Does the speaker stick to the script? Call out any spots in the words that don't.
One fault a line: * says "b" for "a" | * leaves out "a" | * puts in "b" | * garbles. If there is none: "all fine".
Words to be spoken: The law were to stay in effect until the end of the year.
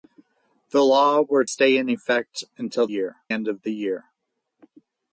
* leaves out "to"
* says "year" for "the"